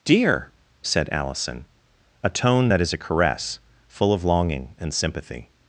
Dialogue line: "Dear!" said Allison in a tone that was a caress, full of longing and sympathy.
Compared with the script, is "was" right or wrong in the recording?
wrong